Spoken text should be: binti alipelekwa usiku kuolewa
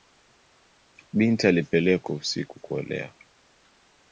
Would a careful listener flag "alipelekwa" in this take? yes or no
no